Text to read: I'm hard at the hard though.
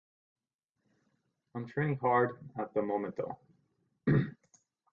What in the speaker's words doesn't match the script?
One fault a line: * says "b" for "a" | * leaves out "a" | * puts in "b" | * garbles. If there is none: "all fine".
* puts in "training"
* says "moment" for "hard"